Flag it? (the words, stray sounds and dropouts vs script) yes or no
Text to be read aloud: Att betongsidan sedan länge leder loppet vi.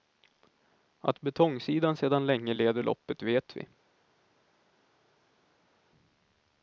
yes